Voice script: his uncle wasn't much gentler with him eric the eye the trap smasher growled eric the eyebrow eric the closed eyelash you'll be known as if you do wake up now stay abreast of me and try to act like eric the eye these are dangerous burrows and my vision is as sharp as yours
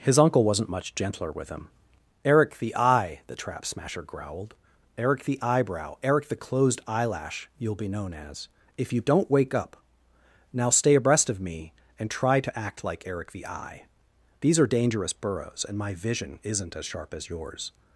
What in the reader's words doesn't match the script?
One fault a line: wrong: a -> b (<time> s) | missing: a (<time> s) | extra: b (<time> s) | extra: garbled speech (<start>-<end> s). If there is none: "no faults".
wrong: do -> don't (9.0 s)
wrong: is -> isn't (16.4 s)